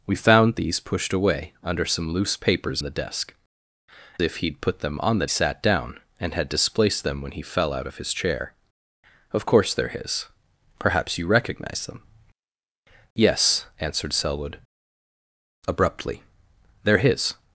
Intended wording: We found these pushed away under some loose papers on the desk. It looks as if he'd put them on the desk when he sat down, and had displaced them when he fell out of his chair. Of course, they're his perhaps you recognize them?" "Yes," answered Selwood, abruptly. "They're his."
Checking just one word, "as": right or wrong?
wrong